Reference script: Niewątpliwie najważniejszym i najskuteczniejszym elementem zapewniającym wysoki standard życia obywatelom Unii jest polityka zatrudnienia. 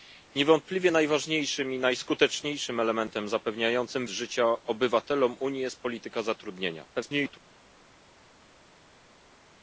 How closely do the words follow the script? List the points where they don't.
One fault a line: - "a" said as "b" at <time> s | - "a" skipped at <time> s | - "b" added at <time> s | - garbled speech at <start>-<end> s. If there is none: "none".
- "wysoki standard" skipped at 4.1 s
- garbled speech at 6.9-7.4 s